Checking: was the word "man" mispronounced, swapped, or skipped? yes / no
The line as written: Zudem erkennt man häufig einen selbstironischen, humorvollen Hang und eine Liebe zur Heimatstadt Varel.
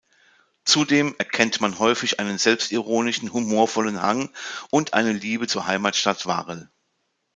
no